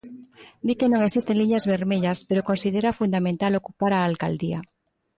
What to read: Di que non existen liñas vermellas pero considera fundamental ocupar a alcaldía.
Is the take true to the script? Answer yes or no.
yes